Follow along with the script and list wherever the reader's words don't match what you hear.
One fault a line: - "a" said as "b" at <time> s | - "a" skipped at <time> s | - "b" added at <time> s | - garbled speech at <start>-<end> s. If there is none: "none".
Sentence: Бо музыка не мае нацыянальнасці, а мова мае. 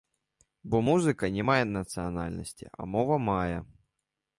none